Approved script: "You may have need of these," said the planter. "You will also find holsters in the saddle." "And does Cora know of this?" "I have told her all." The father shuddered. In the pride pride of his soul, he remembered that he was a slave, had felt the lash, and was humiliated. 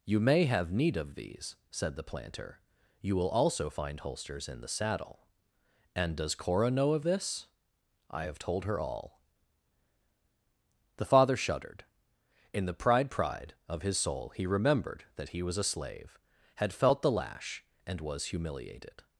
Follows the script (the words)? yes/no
yes